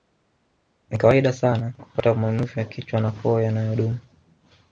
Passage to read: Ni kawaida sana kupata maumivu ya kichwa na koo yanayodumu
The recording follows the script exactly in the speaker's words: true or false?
true